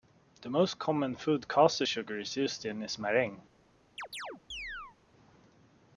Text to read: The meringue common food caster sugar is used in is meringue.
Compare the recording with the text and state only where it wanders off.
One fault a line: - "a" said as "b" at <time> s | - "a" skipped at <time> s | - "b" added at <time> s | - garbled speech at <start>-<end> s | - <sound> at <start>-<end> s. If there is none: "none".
- "meringue" said as "most" at 0.5 s
- chirp at 4.0-5.0 s